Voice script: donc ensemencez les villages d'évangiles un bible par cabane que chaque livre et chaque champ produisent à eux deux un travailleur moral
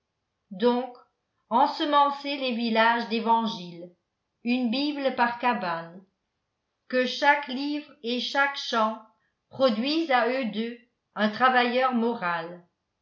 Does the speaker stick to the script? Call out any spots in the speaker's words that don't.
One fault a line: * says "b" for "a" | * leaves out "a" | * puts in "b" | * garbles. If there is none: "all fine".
* says "une" for "un"